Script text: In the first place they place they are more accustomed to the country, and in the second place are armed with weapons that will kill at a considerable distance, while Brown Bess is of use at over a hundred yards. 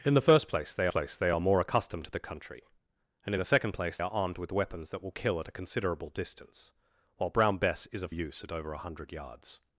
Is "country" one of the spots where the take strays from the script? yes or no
no